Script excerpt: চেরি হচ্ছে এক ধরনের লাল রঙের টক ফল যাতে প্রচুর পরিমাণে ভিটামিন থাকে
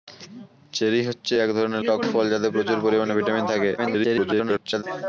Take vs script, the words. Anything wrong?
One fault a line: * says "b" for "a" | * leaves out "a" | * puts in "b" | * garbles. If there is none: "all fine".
* leaves out "লাল রঙের"
* garbles